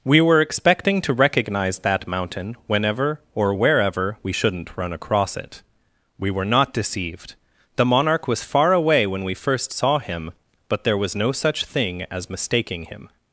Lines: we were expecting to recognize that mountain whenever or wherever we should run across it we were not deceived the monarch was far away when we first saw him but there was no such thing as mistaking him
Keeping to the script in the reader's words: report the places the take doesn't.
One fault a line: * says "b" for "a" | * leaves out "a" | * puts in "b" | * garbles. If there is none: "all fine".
* says "shouldn't" for "should"